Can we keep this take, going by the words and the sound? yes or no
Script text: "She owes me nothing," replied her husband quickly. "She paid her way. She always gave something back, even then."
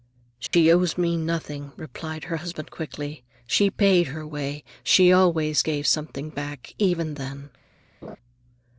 no